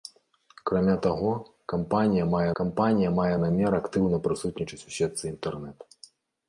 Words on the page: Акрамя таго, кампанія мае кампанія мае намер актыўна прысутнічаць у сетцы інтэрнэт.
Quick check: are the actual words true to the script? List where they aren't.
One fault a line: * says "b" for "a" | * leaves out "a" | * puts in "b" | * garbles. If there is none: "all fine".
all fine